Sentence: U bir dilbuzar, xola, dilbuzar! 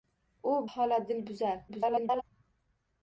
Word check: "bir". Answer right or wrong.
wrong